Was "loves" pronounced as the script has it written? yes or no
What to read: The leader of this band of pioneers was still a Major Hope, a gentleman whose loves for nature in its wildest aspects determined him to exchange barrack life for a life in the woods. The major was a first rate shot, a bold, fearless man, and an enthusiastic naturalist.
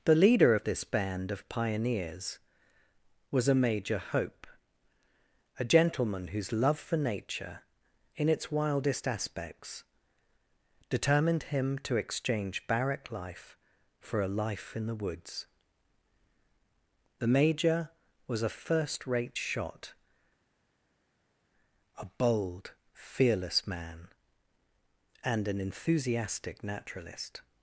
no